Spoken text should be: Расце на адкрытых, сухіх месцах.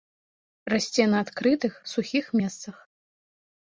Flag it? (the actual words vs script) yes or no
no